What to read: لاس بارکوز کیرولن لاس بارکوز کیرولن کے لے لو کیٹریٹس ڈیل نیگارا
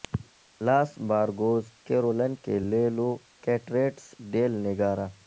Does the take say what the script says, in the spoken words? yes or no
no